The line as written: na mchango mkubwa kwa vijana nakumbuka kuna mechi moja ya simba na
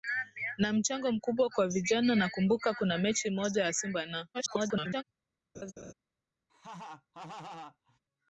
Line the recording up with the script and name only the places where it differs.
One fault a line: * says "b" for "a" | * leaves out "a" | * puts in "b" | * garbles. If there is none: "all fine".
* garbles